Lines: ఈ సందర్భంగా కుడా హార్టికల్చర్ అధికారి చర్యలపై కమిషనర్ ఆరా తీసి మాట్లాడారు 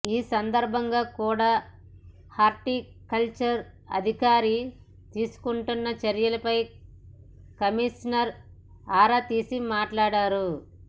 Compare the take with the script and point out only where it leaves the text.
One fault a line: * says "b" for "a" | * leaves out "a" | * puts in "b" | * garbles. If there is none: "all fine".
* puts in "తీసుకుంటున్న"